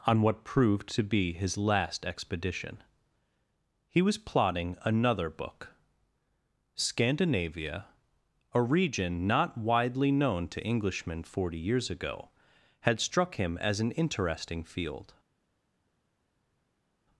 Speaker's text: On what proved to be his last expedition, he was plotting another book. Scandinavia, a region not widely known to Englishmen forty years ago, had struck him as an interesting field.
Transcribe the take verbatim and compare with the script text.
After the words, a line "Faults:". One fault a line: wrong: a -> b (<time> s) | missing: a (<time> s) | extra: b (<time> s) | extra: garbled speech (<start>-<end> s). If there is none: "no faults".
On what proved to be his last expedition, he was plotting another book. Scandinavia, a region not widely known to Englishmen forty years ago, had struck him as an interesting field.
Faults:
no faults